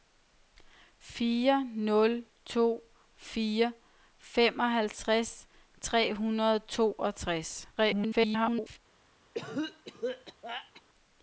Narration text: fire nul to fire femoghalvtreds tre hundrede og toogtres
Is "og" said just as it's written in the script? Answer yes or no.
yes